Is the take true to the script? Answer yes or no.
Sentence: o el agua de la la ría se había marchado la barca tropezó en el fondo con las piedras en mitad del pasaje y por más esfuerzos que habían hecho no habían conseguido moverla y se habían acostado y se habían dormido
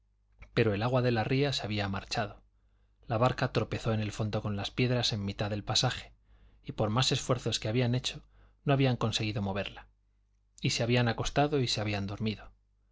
no